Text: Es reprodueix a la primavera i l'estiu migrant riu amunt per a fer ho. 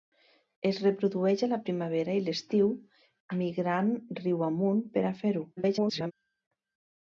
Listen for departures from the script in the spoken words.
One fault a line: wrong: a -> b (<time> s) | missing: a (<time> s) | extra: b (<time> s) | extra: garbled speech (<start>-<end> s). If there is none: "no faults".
extra: garbled speech (5.6-6.1 s)